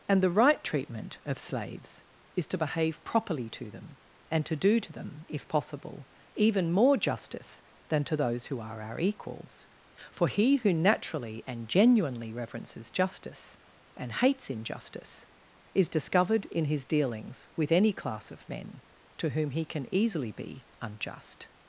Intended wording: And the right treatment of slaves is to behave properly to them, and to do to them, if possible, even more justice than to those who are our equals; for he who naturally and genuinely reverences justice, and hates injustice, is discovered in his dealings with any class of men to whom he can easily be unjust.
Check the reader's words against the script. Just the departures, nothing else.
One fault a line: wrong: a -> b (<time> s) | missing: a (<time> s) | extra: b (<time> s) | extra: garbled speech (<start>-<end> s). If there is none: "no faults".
no faults